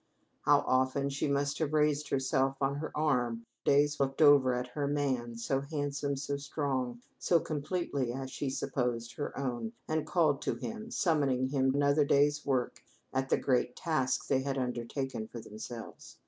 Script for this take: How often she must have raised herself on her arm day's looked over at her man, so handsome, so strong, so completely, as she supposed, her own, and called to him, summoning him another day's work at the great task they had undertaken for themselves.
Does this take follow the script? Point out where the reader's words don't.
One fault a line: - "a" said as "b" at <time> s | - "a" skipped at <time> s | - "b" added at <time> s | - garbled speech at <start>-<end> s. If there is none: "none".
none